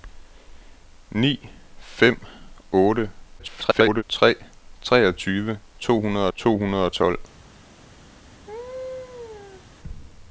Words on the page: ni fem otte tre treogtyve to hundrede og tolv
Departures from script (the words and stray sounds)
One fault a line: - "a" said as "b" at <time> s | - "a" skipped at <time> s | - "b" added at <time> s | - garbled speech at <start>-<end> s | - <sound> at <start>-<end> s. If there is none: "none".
- garbled speech at 3.4-4.0 s
- "to hundrede" added at 6.4 s
- laugh at 8.5-9.6 s